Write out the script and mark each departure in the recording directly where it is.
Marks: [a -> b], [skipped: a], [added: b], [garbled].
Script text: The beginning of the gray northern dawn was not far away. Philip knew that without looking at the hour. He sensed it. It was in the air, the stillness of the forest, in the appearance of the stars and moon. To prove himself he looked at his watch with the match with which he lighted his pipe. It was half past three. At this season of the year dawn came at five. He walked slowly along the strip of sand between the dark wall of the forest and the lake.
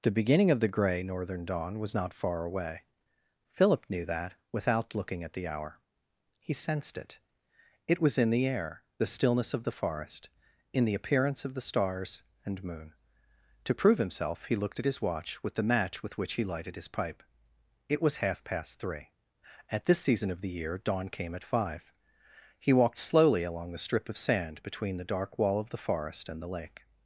The beginning of the gray northern dawn was not far away. Philip knew that without looking at the hour. He sensed it. It was in the air, the stillness of the forest, in the appearance of the stars and moon. To prove himself he looked at his watch with the match with which he lighted his pipe. It was half past three. At this season of the year dawn came at five. He walked slowly along the strip of sand between the dark wall of the forest and the lake.